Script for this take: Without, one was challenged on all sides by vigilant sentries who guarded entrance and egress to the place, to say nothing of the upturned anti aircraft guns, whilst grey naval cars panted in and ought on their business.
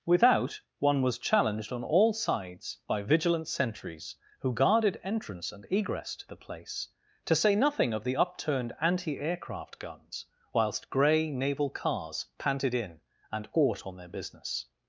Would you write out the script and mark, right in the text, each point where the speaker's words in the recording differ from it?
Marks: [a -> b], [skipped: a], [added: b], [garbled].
Without, one was challenged on all sides by vigilant sentries who guarded entrance and egress to the place, to say nothing of the upturned anti aircraft guns, whilst grey naval cars panted in and ought on their business.